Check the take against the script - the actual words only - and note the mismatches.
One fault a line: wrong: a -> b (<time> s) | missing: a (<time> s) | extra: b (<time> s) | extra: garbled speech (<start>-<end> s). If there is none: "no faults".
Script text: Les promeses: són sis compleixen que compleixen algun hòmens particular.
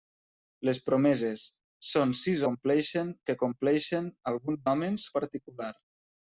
no faults